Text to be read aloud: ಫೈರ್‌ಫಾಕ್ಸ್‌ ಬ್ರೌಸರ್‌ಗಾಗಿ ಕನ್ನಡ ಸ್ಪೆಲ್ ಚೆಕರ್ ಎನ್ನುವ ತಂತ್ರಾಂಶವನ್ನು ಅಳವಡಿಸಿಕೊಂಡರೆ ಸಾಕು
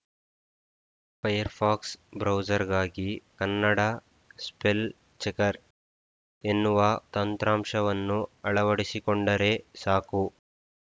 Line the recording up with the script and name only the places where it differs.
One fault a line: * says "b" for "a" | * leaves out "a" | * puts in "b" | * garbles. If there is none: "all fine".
all fine